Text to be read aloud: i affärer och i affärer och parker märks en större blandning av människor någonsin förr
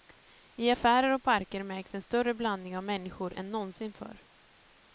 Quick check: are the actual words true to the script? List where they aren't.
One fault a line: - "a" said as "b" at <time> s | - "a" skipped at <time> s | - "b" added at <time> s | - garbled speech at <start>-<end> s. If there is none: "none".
- "i affärer och" skipped at 1.2 s
- "än" added at 3.3 s